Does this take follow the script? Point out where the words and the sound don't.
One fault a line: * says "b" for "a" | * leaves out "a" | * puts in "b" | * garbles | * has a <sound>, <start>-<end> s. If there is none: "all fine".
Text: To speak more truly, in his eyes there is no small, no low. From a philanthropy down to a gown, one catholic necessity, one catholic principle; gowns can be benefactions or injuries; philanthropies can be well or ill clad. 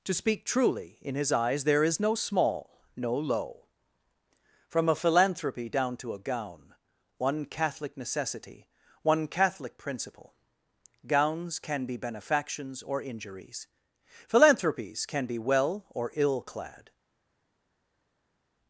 * leaves out "more"